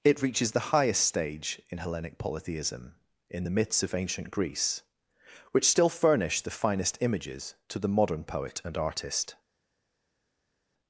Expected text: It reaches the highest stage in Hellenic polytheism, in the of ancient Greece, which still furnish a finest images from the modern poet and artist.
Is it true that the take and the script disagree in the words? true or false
true